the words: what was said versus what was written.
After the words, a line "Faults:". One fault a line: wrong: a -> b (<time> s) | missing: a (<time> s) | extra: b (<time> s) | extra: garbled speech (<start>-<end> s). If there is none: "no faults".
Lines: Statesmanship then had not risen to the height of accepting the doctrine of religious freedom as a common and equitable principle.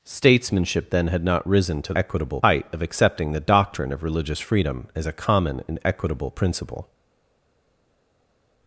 Statesmanship then had not risen to equitable height of accepting the doctrine of religious freedom as a common and equitable principle.
Faults:
wrong: the -> equitable (1.9 s)